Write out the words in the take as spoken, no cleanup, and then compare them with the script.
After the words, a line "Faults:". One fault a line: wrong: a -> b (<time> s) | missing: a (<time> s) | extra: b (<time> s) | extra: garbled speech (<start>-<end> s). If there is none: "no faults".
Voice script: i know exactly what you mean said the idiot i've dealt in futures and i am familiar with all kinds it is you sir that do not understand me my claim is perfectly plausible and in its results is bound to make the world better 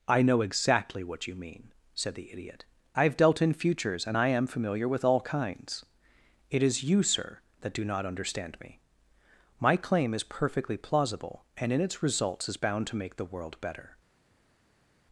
i know exactly what you mean said the idiot i've dealt in futures and i am familiar with all kinds it is you sir that do not understand me my claim is perfectly plausible and in its results is bound to make the world better
Faults:
no faults